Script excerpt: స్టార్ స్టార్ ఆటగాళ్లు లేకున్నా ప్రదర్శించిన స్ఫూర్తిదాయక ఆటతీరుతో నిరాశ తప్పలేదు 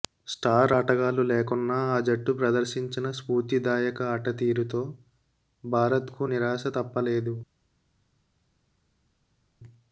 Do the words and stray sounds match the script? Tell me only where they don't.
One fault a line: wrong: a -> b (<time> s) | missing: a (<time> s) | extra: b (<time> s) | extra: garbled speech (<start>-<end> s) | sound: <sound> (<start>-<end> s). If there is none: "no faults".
missing: స్టార్ (0.7 s)
extra: ఆ జట్టు (1.9 s)
extra: భారత్కు (5.6 s)